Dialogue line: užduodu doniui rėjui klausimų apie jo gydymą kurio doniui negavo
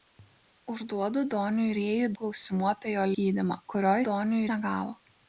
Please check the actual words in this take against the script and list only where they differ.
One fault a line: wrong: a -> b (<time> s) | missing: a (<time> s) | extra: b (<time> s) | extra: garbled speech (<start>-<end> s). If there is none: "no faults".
no faults